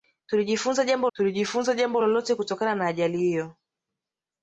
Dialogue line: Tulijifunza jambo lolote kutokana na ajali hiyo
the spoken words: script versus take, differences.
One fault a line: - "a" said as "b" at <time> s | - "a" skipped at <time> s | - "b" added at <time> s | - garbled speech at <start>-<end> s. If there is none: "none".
- "tulijifunza jambo" added at 1.1 s